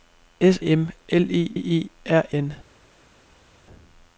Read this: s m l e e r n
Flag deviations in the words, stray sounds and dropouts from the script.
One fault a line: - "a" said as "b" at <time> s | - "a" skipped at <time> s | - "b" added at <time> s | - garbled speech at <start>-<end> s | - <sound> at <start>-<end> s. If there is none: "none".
none